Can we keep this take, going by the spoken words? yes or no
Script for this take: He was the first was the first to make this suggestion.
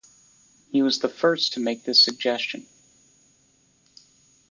no